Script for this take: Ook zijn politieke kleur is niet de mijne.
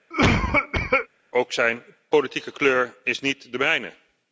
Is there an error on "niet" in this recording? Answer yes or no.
no